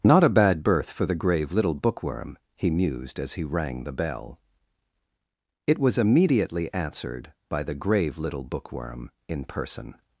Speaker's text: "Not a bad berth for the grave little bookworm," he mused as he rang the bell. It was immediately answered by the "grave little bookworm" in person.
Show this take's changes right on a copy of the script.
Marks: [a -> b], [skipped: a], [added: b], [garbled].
"Not a bad berth for the grave little bookworm," he mused as he rang the bell. It was immediately answered by the "grave little bookworm" in person.